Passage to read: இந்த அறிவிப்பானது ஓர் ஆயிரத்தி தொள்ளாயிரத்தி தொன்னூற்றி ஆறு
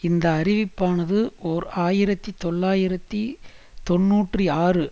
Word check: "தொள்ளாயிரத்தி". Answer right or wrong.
right